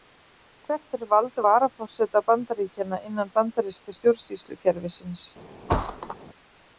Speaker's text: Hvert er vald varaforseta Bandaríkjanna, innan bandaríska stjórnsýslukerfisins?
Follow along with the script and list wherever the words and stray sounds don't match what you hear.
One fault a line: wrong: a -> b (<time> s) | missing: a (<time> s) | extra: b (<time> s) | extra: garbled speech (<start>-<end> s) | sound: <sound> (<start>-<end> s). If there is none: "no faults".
sound: thud (5.7-6.2 s)